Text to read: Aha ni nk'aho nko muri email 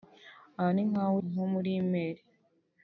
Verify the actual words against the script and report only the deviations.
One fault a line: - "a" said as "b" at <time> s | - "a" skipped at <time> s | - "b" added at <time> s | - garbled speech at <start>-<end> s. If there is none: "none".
none